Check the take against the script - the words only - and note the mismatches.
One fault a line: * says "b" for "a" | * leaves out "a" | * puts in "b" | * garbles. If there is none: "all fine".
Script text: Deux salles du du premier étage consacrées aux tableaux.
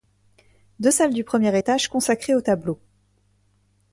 * leaves out "du"